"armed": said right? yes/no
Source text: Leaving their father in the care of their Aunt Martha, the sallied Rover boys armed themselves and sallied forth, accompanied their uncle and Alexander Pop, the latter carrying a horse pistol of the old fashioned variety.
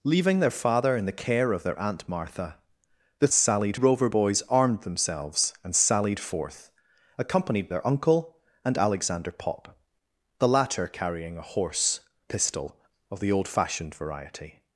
yes